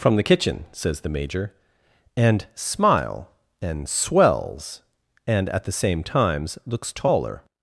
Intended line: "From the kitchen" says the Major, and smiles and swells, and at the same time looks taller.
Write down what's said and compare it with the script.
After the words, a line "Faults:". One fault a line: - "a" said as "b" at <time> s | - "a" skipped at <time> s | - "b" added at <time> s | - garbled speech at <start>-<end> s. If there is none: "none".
"From the kitchen" says the Major, and smile and swells, and at the same times looks taller.
Faults:
- "smiles" said as "smile" at 2.5 s
- "time" said as "times" at 6.0 s